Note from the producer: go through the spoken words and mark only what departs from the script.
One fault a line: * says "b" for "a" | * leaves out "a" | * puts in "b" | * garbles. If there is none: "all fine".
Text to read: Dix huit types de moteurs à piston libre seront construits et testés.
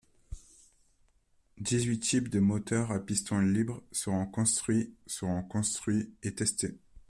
* puts in "seront construits"